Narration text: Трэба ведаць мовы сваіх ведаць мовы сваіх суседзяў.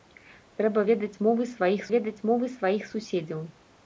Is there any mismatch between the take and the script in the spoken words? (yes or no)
no